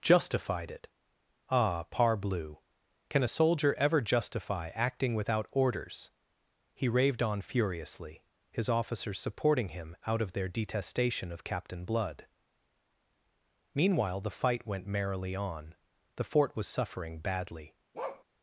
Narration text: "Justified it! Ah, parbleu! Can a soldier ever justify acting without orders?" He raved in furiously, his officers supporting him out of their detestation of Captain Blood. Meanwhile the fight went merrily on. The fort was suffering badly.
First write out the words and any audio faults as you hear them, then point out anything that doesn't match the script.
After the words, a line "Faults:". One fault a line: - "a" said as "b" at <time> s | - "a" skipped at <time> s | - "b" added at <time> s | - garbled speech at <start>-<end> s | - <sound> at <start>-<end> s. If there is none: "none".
"Justified it! Ah, parbleu! Can a soldier ever justify acting without orders?" He raved on furiously, his officers supporting him out of their detestation of Captain Blood. Meanwhile the fight went merrily on. The fort was suffering badly.
Faults:
- "in" said as "on" at 7.2 s
- bark at 17.9-18.2 s